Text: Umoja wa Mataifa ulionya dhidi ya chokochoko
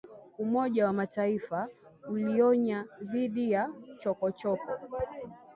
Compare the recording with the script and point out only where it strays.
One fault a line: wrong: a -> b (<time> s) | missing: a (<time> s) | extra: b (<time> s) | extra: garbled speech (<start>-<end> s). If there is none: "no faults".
no faults